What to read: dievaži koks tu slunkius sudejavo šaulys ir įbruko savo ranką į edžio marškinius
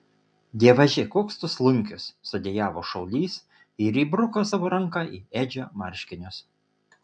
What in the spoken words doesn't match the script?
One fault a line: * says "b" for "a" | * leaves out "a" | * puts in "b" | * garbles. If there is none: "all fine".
all fine